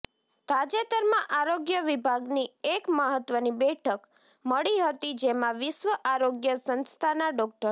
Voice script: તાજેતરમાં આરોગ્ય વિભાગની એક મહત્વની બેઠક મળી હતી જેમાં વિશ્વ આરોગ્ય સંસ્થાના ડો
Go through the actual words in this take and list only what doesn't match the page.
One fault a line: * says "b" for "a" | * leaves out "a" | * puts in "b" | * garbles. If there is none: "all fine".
all fine